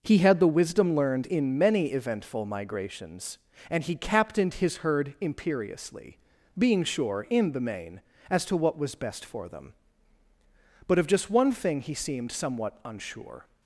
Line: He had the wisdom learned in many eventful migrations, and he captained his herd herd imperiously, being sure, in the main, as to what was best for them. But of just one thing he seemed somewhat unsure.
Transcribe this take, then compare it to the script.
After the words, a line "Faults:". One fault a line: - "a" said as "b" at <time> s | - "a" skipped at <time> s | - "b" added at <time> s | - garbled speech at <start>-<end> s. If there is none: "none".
He had the wisdom learned in many eventful migrations, and he captained his herd imperiously, being sure, in the main, as to what was best for them. But of just one thing he seemed somewhat unsure.
Faults:
- "herd" skipped at 5.1 s